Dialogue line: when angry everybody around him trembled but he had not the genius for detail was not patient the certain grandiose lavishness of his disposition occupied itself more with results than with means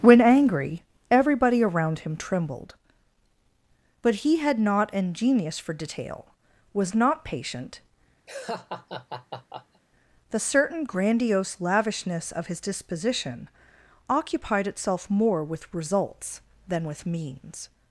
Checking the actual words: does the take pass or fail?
fail